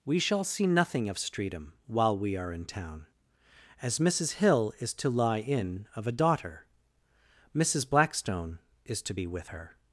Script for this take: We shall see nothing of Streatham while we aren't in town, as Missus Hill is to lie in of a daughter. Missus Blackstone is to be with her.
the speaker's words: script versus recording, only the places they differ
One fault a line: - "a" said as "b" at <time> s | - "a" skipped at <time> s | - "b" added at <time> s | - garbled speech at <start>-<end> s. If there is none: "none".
- "aren't" said as "are" at 2.4 s